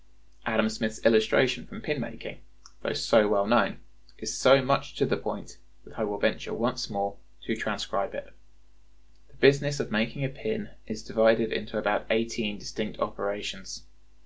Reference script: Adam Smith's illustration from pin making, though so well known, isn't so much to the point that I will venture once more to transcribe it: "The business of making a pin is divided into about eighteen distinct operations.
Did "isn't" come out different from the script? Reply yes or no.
yes